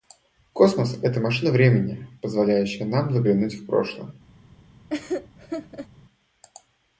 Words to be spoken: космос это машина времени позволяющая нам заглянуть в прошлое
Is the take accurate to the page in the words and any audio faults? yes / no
no